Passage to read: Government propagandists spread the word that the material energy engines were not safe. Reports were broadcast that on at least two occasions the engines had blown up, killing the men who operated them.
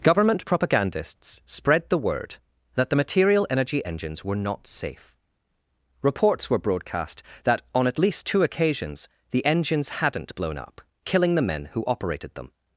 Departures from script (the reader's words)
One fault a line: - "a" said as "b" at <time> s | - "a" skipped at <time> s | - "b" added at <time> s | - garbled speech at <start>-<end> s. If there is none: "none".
- "had" said as "hadn't" at 9.9 s